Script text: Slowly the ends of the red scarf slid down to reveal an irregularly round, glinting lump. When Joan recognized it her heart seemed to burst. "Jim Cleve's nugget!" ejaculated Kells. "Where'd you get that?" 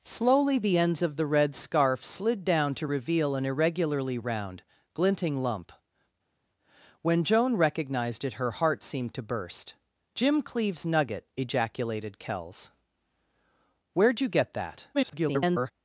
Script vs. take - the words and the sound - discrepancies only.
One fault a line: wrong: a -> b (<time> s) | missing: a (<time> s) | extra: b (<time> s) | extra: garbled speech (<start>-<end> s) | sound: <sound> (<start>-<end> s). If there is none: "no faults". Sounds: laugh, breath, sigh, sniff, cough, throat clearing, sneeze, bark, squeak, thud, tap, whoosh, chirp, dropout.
extra: garbled speech (14.9-15.7 s)